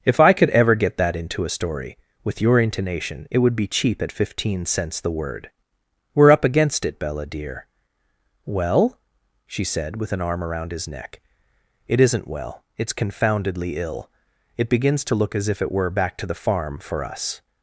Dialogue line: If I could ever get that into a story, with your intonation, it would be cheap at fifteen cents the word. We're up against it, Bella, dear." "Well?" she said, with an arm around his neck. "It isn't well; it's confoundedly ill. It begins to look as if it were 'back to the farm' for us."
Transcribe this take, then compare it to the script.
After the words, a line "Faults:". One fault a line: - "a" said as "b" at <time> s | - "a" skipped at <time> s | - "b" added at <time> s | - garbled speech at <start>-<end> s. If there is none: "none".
If I could ever get that into a story, with your intonation, it would be cheap at fifteen cents the word. We're up against it, Bella, dear." "Well?" she said, with an arm around his neck. "It isn't well; it's confoundedly ill. It begins to look as if it were 'back to the farm' for us."
Faults:
none